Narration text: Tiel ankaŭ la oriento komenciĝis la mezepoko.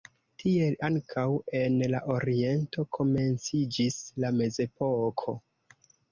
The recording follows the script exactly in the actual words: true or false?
false